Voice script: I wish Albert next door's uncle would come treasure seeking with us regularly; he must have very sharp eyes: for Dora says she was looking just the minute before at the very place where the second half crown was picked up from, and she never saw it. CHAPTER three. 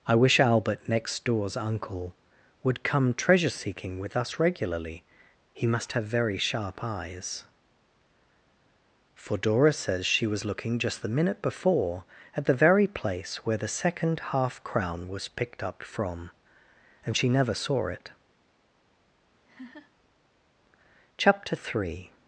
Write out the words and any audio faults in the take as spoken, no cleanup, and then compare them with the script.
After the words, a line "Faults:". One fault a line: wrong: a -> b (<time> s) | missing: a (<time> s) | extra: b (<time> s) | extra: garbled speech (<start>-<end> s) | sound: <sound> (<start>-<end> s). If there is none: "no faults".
I wish Albert next door's uncle would come treasure seeking with us regularly; he must have very sharp eyes: for Dora says she was looking just the minute before at the very place where the second half crown was picked up from, and she never saw it. CHAPTER three.
Faults:
sound: laugh (19.4-19.9 s)